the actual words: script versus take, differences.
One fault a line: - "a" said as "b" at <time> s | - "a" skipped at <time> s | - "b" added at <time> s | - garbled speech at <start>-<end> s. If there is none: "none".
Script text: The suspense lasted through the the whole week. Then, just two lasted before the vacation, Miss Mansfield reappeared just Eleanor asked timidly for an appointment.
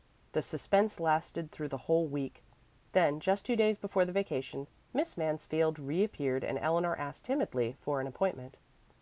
- "the" skipped at 1.8 s
- "lasted" said as "days" at 3.6 s
- "just" said as "and" at 6.4 s